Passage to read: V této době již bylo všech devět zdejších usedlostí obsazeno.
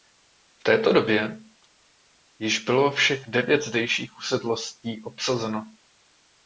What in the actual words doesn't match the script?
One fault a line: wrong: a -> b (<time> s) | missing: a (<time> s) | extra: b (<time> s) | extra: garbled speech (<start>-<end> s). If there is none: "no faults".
no faults